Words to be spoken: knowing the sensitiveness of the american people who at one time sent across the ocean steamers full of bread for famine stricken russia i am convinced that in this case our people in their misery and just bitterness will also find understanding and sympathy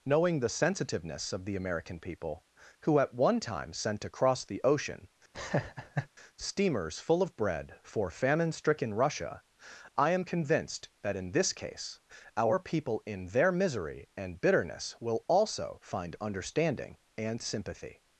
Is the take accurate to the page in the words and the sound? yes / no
no